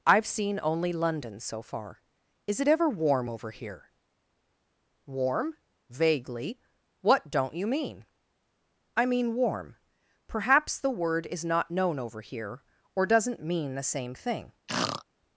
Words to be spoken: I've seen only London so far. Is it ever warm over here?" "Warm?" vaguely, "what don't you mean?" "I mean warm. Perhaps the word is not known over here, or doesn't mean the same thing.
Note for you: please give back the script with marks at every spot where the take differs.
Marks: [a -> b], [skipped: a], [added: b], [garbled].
I've seen only London so far. Is it ever warm over here?" "Warm?" vaguely, "what don't you mean?" "I mean warm. Perhaps the word is not known over here, or doesn't mean the same thing.